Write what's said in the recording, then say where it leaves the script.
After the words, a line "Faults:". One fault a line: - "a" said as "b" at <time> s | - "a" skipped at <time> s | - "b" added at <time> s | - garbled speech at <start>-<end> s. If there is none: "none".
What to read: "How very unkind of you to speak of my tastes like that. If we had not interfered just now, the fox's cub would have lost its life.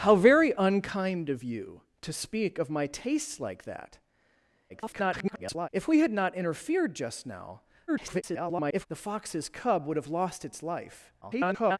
"How very unkind of you to speak of my tastes like that. [garbled] If we had not interfered just now, [garbled] the fox's cub would have lost its life. [garbled]
Faults:
- garbled speech at 4.7-5.7 s
- garbled speech at 7.9-8.9 s
- garbled speech at 11.2-11.8 s